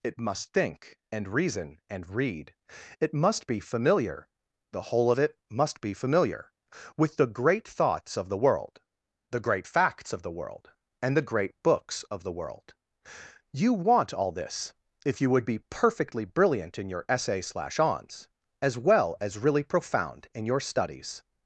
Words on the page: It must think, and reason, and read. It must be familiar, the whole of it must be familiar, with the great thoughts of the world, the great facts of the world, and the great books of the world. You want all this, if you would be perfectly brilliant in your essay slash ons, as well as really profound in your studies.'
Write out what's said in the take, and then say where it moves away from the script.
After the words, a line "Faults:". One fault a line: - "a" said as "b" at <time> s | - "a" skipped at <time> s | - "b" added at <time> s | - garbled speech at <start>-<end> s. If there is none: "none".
It must think, and reason, and read. It must be familiar, the whole of it must be familiar, with the great thoughts of the world, the great facts of the world, and the great books of the world. You want all this, if you would be perfectly brilliant in your essay slash ons, as well as really profound in your studies.'
Faults:
none